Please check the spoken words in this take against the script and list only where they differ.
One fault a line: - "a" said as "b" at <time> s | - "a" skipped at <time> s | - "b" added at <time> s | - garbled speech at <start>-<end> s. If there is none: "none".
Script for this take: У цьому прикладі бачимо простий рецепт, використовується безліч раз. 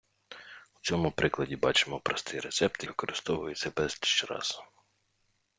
none